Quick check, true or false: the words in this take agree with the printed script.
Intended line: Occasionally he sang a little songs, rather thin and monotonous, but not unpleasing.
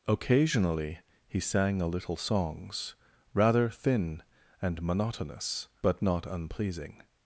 true